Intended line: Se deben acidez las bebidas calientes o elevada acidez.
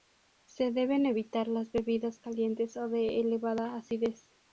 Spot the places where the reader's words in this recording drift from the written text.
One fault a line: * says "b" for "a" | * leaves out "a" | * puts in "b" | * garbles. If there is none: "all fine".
* says "evitar" for "acidez"
* puts in "de"